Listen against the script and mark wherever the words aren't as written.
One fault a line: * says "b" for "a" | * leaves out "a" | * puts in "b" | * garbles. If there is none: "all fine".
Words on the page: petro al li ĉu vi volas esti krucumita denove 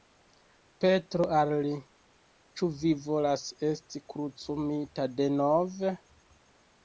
all fine